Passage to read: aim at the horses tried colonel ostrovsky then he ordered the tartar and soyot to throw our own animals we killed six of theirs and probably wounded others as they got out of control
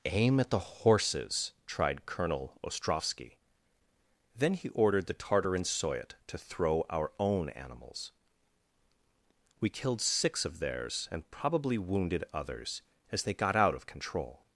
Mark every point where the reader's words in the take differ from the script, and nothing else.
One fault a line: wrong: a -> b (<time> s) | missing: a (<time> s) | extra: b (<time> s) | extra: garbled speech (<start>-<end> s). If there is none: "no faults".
no faults